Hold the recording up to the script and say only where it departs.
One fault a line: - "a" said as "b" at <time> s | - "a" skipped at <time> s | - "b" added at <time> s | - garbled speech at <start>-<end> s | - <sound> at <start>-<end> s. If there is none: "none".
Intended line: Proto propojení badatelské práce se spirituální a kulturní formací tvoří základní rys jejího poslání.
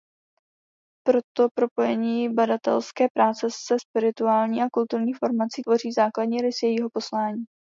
none